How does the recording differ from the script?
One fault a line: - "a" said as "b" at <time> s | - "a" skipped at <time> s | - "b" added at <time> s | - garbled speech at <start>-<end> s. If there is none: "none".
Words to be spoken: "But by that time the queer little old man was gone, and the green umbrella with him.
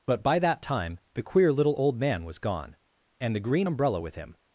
none